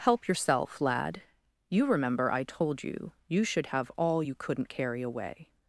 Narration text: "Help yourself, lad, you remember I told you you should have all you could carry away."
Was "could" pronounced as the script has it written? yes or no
no